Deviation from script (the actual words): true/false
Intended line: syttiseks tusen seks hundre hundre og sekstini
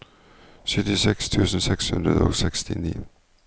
true